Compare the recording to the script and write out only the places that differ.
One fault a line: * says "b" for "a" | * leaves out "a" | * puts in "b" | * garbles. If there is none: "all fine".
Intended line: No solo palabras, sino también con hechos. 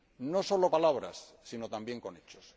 all fine